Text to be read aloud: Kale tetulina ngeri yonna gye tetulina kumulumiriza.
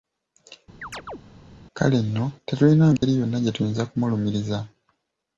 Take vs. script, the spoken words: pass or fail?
fail